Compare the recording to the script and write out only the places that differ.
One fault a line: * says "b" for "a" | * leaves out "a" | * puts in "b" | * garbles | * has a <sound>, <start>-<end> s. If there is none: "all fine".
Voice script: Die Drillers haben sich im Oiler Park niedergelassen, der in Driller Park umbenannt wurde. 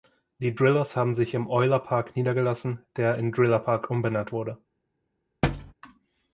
* has a thud, 5.4-5.7 s